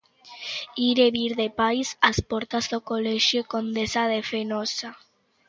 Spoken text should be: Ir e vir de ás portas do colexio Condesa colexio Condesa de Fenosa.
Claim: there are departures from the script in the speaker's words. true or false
true